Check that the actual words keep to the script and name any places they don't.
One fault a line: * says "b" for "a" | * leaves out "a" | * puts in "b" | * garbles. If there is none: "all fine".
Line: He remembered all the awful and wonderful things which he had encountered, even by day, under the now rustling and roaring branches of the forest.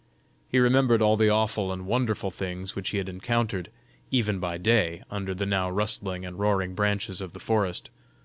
all fine